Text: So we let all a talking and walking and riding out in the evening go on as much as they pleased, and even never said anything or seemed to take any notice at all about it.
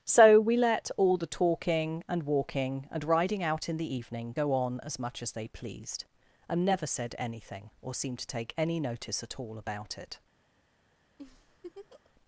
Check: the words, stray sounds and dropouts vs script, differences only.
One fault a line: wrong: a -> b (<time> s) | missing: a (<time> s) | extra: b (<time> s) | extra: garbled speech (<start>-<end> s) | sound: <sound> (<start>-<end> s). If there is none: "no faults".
wrong: a -> the (1.2 s)
missing: even (6.6 s)
sound: laugh (11.2-12.1 s)